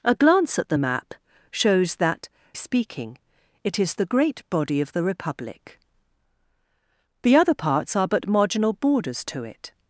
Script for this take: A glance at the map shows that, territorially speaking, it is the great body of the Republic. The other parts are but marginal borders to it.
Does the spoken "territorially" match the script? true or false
false